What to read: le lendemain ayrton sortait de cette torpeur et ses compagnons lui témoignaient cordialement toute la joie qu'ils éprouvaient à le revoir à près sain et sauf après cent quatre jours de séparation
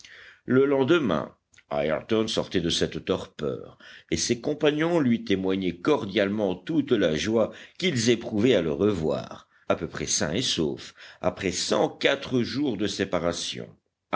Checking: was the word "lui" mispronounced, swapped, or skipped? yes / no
no